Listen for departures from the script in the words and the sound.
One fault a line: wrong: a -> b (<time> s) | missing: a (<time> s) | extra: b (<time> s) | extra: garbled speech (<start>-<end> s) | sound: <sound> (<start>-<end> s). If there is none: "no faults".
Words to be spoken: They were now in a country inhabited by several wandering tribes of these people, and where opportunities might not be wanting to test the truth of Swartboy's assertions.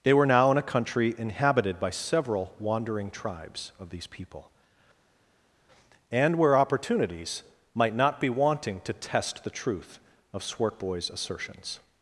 no faults